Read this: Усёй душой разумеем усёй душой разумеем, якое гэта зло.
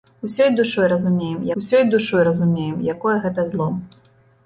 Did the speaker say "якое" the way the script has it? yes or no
yes